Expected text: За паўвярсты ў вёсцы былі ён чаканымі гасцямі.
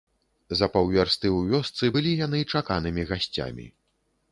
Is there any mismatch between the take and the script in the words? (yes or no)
yes